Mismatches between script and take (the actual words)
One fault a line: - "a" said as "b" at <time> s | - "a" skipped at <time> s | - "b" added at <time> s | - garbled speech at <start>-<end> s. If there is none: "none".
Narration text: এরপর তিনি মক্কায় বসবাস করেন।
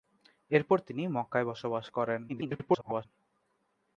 - garbled speech at 2.3-3.1 s